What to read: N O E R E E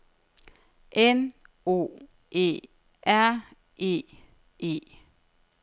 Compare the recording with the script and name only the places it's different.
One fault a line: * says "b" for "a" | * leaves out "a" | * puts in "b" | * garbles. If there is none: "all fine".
all fine